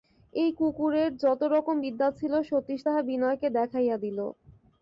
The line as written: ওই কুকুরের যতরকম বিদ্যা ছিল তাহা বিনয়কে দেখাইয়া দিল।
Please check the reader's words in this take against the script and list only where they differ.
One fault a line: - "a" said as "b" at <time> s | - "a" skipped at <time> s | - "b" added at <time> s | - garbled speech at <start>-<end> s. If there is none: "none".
- "ওই" said as "এই" at 0.3 s
- "সতীশ" added at 2.5 s